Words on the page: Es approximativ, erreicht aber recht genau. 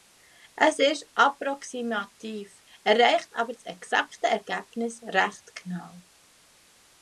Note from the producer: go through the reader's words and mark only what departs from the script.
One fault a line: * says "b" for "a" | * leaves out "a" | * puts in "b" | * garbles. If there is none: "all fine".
* puts in "ist"
* puts in "das exakte Ergebnis"